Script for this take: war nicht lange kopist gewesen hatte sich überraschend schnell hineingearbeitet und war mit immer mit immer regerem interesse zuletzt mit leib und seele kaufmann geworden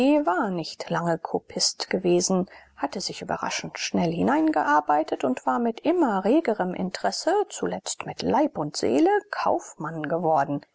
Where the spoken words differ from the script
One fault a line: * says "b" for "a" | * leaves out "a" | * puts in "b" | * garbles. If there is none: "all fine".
* leaves out "mit immer"